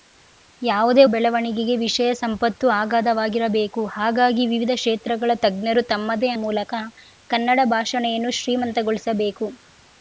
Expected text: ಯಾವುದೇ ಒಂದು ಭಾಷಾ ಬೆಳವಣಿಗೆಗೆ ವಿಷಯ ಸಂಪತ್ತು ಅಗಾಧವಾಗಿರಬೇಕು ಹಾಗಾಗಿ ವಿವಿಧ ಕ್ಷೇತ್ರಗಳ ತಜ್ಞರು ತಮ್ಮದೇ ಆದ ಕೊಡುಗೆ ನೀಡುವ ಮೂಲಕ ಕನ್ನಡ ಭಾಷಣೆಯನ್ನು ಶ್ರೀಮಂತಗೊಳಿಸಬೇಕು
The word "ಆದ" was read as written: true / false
false